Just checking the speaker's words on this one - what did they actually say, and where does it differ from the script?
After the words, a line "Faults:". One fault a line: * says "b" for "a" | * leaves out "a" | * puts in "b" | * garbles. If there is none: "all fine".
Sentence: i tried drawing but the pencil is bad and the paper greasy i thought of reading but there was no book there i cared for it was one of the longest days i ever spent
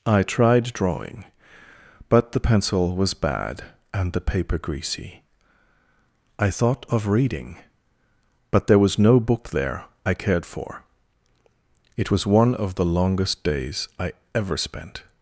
i tried drawing but the pencil was bad and the paper greasy i thought of reading but there was no book there i cared for it was one of the longest days i ever spent
Faults:
* says "was" for "is"